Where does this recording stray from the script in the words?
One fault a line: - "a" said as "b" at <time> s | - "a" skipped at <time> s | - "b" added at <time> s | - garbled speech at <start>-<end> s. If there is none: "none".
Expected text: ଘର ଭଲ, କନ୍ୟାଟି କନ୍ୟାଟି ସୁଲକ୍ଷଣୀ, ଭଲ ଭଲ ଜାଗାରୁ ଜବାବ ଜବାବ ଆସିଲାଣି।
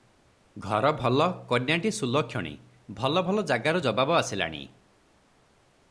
- "କନ୍ୟାଟି" skipped at 1.9 s
- "ଜବାବ" skipped at 4.2 s